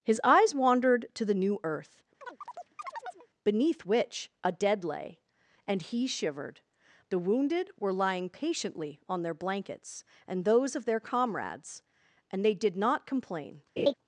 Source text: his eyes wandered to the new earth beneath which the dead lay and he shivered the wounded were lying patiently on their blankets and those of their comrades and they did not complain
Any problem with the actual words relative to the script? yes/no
yes